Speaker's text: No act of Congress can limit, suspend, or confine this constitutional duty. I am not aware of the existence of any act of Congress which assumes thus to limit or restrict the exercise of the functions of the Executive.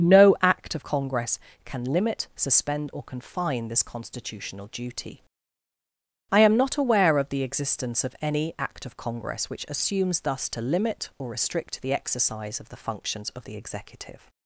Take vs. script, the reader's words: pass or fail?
pass